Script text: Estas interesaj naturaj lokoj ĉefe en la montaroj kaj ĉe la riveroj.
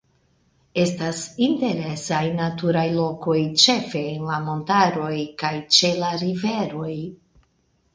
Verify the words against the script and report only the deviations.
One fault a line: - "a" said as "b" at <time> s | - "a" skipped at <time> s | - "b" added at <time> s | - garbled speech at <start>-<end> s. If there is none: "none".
none